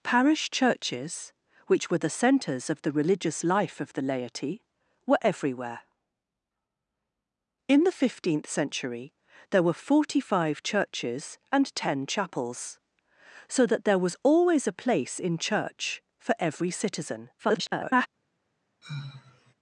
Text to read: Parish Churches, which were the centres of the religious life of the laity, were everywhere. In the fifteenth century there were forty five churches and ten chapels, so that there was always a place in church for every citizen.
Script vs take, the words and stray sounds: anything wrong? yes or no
yes